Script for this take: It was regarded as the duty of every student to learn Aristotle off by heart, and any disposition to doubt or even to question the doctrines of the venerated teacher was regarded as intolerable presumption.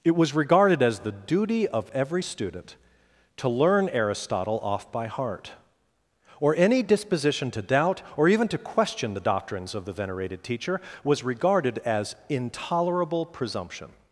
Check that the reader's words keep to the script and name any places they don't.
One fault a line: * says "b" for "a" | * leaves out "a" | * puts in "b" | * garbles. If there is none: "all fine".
* says "or" for "and"